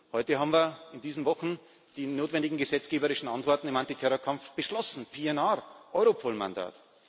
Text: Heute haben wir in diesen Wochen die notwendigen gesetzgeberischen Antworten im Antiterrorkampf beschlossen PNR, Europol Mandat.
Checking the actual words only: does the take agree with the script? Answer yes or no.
yes